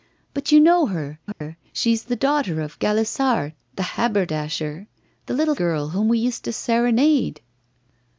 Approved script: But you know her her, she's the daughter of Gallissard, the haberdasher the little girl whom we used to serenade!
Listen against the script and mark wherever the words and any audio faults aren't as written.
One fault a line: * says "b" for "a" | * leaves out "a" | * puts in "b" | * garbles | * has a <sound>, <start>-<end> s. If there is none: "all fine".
* has a dropout, 1.3-1.4 s